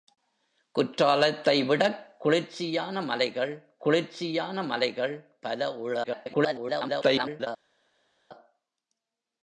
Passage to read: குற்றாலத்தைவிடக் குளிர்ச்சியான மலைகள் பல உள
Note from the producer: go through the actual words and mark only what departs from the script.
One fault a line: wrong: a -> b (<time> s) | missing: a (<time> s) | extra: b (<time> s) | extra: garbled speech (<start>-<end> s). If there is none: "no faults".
extra: குளிர்ச்சியான மலைகள் (3.8 s)
extra: garbled speech (6.0-7.5 s)